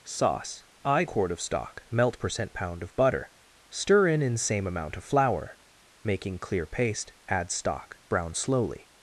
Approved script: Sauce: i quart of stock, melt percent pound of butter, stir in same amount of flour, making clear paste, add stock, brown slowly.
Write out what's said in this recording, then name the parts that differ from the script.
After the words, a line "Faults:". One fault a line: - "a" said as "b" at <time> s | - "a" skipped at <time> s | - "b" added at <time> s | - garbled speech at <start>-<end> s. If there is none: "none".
Sauce: i quart of stock, melt percent pound of butter, stir in in same amount of flour, making clear paste, add stock, brown slowly.
Faults:
- "in" added at 4.2 s